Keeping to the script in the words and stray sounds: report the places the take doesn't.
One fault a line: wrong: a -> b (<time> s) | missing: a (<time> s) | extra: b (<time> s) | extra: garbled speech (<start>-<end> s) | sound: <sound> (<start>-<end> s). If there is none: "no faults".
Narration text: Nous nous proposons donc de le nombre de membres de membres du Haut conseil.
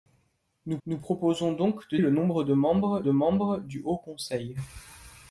no faults